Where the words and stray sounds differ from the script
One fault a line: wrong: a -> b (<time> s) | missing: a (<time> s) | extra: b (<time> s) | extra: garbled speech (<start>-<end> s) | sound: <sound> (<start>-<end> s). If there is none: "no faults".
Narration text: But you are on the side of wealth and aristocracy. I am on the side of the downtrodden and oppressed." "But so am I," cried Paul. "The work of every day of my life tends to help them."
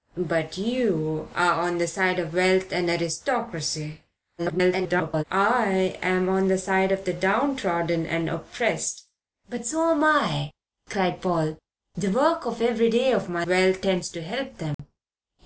extra: garbled speech (4.4-5.2 s)
wrong: life -> wealth (13.5 s)
sound: dropout (14.7-14.8 s)